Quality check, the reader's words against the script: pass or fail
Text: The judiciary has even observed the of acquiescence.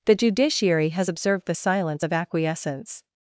fail